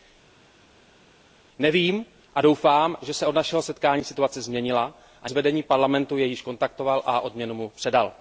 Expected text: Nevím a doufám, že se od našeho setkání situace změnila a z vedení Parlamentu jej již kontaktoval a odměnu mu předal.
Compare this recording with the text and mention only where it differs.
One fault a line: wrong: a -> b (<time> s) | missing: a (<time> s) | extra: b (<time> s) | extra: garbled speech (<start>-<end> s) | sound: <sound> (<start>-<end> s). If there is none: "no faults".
no faults